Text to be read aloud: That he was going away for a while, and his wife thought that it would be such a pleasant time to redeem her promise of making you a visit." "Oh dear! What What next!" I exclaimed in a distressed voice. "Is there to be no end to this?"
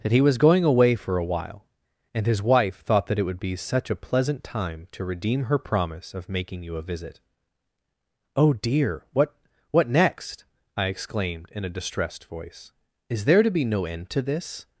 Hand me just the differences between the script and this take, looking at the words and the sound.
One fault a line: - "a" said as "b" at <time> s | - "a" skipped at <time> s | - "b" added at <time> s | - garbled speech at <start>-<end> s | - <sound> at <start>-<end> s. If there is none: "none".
none